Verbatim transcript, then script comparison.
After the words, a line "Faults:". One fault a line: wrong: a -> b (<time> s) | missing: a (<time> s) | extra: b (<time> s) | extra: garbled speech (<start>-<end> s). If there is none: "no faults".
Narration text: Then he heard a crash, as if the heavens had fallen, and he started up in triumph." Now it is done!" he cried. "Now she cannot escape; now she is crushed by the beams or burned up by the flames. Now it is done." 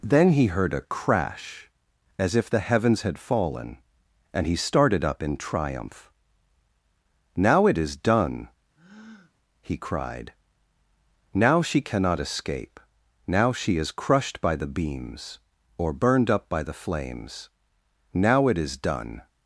Then he heard a crash, as if the heavens had fallen, and he started up in triumph." Now it is done!" he cried. "Now she cannot escape; now she is crushed by the beams or burned up by the flames. Now it is done."
Faults:
no faults